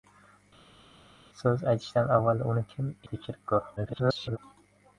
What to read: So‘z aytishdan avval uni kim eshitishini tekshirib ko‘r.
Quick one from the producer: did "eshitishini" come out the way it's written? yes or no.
no